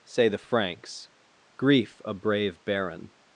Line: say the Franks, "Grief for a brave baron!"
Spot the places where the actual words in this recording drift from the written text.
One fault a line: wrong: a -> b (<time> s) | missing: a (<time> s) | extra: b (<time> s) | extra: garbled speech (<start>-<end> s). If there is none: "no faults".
missing: for (2.0 s)